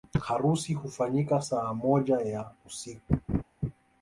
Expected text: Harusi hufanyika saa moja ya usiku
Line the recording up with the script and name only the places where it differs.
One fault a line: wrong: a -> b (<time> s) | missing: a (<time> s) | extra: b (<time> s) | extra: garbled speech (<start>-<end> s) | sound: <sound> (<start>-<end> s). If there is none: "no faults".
sound: laugh (3.3-3.4 s)